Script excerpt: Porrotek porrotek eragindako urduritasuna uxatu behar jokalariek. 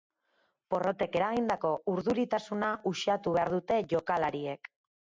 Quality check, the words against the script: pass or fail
fail